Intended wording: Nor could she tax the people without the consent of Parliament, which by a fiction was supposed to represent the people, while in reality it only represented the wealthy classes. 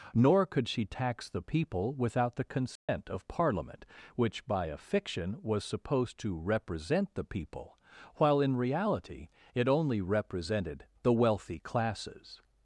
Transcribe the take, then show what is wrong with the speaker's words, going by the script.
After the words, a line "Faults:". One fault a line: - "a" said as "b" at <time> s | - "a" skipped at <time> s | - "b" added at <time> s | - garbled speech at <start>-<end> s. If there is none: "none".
Nor could she tax the people without the consent of Parliament, which by a fiction was supposed to represent the people, while in reality it only represented the wealthy classes.
Faults:
none